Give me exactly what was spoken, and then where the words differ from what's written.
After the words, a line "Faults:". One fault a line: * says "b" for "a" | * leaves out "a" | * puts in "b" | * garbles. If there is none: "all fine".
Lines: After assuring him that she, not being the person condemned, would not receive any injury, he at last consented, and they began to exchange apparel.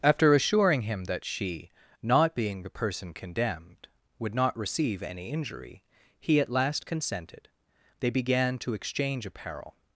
After assuring him that she, not being the person condemned, would not receive any injury, he at last consented, they began to exchange apparel.
Faults:
* leaves out "and"